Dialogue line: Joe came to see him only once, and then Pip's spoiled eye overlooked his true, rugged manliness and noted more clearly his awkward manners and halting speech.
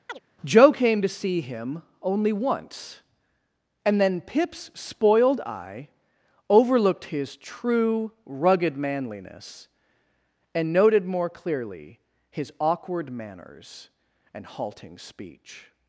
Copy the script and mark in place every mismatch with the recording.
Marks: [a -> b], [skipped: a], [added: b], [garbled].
Joe came to see him only once, and then Pip's spoiled eye overlooked his true, rugged manliness and noted more clearly his awkward manners and halting speech.